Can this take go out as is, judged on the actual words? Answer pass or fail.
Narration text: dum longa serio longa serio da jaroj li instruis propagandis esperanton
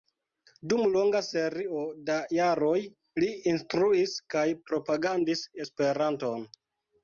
fail